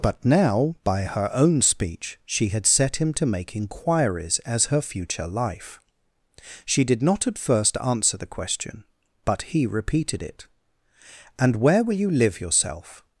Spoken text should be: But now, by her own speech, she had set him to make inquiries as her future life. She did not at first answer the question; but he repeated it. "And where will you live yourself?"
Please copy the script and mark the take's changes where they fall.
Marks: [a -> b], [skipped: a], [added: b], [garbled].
But now, by her own speech, she had set him to make inquiries as her future life. She did not at first answer the question; but he repeated it. "And where will you live yourself?"